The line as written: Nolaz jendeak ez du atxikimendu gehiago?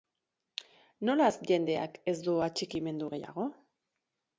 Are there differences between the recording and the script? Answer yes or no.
no